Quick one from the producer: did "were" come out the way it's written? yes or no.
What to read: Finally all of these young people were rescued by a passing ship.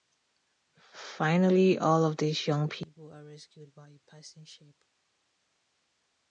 no